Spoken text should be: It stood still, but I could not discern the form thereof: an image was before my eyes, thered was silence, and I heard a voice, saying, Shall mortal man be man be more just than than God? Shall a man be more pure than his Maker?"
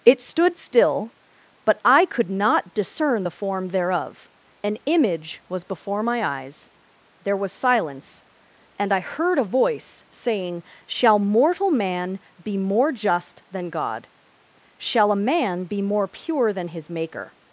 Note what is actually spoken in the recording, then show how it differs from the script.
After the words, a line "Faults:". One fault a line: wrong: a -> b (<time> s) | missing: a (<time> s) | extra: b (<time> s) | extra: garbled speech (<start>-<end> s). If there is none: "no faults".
It stood still, but I could not discern the form thereof: an image was before my eyes, there was silence, and I heard a voice, saying, Shall mortal man be more just than God? Shall a man be more pure than his Maker?"
Faults:
wrong: thered -> there (7.2 s)
missing: man be (12.6 s)
missing: than (13.7 s)